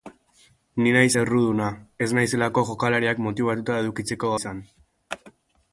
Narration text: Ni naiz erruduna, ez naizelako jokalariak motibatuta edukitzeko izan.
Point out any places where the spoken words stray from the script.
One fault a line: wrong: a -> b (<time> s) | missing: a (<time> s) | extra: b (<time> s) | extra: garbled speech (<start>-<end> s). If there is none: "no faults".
no faults